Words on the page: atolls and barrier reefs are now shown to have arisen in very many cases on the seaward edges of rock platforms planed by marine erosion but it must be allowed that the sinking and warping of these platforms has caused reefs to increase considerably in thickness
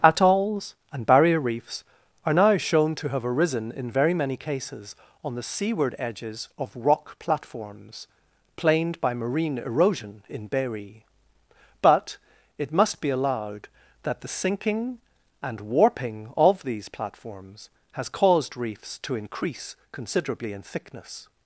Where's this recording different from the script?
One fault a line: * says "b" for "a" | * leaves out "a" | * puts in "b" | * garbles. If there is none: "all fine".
* puts in "in berry"